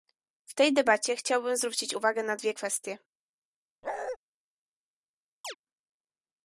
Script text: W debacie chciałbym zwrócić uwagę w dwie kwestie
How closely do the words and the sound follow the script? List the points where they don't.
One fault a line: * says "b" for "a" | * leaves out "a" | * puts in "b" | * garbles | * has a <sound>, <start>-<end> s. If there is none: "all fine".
* puts in "tej"
* says "na" for "w"
* has a bark, 3.8-4.2 s
* has a chirp, 5.4-5.6 s